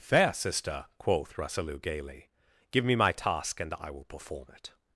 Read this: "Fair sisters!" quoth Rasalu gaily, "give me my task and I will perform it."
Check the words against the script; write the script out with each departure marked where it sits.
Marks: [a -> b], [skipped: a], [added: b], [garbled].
"Fair [sisters!" -> sister] quoth Rasalu gaily, "give me my task and I will perform it."